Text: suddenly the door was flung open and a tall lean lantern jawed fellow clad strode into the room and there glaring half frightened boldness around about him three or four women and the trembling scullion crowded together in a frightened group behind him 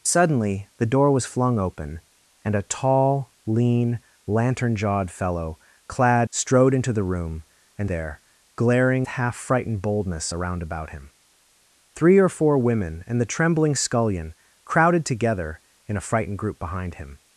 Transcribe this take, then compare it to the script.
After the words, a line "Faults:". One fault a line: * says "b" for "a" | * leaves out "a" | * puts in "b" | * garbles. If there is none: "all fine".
suddenly the door was flung open and a tall lean lantern jawed fellow clad strode into the room and there glaring half frightened boldness around about him three or four women and the trembling scullion crowded together in a frightened group behind him
Faults:
all fine